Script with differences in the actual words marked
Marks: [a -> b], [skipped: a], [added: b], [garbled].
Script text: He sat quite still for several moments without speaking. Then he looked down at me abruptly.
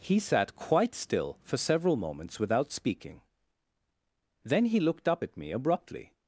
He sat quite still for several moments without speaking. Then he looked [down -> up] at me abruptly.